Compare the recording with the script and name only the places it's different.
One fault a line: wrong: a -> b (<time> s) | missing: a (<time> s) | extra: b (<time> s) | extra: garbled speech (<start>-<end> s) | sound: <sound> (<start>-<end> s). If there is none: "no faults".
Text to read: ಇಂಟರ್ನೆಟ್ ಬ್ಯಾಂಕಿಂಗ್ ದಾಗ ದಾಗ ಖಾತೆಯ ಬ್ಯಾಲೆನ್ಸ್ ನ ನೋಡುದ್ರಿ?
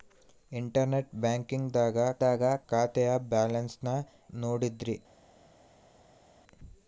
no faults